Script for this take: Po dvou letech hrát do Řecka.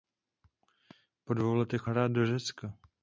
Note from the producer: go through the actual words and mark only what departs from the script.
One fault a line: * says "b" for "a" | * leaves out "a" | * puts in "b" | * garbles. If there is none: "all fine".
all fine